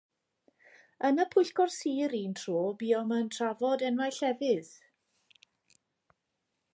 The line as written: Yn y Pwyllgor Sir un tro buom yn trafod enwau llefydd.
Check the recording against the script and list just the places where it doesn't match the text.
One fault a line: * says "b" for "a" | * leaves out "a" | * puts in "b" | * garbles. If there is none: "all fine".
all fine